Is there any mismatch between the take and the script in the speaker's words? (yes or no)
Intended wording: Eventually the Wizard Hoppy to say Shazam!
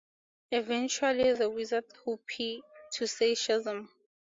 no